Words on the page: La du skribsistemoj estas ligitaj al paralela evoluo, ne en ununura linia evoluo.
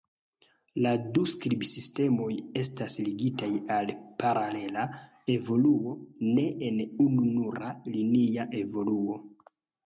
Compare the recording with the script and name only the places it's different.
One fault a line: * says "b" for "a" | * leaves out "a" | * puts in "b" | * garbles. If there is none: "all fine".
all fine